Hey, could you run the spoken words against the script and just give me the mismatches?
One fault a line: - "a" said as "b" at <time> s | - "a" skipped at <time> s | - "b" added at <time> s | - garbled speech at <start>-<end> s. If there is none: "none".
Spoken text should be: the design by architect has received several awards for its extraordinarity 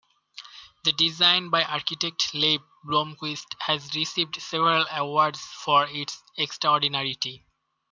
- "leif blomquist" added at 2.3 s